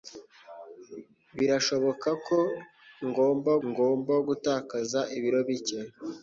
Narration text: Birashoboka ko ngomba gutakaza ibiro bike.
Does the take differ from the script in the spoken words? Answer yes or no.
yes